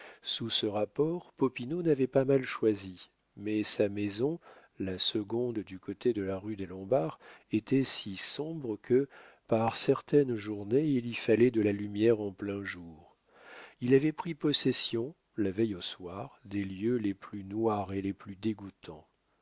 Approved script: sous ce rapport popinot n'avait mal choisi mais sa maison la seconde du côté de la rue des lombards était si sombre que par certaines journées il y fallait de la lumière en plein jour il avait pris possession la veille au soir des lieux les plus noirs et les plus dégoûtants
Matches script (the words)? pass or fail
fail